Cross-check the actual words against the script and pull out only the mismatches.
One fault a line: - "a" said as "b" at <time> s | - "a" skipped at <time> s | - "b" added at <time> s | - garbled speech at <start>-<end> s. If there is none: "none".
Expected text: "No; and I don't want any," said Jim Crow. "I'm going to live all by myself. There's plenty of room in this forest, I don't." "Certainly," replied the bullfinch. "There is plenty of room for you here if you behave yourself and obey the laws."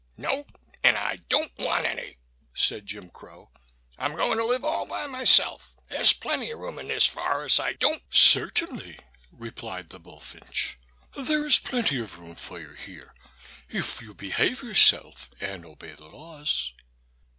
none